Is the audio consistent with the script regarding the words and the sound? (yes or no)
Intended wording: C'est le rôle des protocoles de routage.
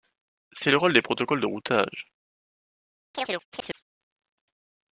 no